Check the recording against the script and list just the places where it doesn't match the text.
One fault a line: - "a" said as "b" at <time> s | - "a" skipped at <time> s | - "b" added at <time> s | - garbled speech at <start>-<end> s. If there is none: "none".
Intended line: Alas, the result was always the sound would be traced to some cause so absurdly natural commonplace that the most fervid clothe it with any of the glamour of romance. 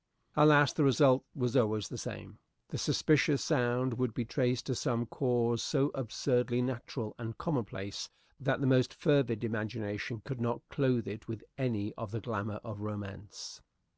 - "same The suspicious" added at 1.9 s
- "and" added at 7.2 s
- "imagination could not" added at 9.4 s